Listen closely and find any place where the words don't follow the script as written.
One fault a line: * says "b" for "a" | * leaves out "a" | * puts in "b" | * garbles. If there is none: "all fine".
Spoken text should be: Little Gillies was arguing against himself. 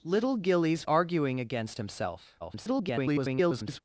* leaves out "was"
* garbles